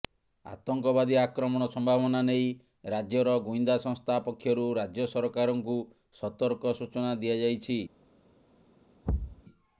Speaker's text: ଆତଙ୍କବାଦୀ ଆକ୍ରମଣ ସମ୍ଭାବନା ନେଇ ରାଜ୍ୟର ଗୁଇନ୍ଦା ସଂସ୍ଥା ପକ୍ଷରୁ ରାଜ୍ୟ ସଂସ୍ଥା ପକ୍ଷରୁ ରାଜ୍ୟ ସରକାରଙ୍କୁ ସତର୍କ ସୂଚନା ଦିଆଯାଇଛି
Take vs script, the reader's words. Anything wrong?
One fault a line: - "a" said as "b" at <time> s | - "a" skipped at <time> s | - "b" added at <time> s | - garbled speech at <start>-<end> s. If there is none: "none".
- "ସଂସ୍ଥା ପକ୍ଷରୁ ରାଜ୍ୟ" skipped at 5.1 s